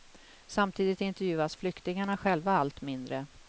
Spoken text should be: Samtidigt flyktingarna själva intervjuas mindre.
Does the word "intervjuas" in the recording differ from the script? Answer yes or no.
yes